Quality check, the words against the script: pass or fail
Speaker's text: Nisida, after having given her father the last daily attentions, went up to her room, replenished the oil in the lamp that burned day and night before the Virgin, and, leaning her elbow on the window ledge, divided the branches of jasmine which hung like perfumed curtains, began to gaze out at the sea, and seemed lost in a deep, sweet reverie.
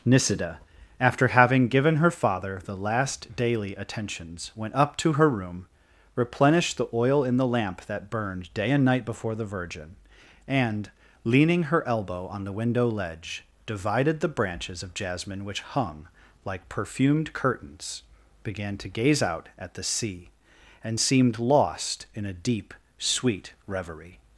pass